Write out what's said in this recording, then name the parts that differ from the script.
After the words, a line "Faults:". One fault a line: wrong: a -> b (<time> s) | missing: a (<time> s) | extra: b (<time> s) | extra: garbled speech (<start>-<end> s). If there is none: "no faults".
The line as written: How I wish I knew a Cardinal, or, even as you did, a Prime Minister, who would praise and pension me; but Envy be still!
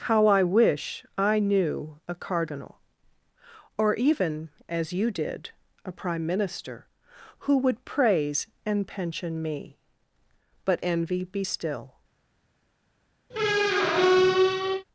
How I wish I knew a Cardinal, or, even as you did, a Prime Minister, who would praise and pension me; but Envy be still!
Faults:
no faults